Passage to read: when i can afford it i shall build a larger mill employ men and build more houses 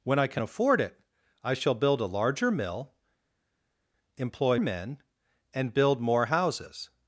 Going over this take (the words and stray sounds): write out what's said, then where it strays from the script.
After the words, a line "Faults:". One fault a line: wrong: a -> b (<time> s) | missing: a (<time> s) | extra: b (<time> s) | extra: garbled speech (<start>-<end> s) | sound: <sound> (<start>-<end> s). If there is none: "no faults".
when i can afford it i shall build a larger mill employ men and build more houses
Faults:
no faults